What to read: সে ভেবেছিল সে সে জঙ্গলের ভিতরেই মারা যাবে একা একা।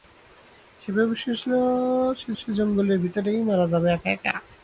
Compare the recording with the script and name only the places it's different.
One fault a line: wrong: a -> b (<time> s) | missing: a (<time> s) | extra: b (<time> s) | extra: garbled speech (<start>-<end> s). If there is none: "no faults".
no faults